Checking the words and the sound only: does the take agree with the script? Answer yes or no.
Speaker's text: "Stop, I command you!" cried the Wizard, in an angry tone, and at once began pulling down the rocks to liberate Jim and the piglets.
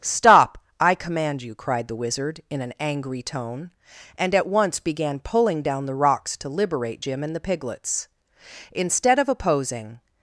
no